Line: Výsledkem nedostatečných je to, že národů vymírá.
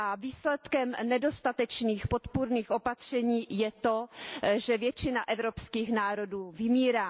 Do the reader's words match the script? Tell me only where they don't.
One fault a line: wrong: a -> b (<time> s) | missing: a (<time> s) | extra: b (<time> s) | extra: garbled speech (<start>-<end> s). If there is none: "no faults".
extra: podpůrných opatření (2.1 s)
extra: většina evropských (4.8 s)